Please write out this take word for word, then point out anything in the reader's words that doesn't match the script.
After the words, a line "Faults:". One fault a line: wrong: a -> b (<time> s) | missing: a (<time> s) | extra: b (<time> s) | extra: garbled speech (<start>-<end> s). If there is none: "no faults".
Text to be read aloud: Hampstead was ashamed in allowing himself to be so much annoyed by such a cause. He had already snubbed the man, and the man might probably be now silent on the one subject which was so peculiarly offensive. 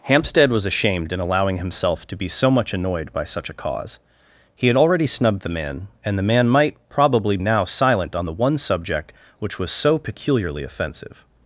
Hampstead was ashamed in allowing himself to be so much annoyed by such a cause. He had already snubbed the man, and the man might probably now silent on the one subject which was so peculiarly offensive.
Faults:
missing: be (7.4 s)